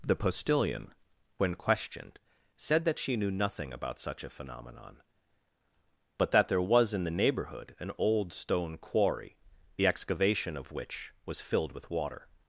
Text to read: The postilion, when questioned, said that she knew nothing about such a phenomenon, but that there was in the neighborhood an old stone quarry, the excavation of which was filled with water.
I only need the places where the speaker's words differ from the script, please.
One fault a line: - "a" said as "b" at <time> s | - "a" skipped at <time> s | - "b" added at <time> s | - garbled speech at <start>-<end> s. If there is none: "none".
none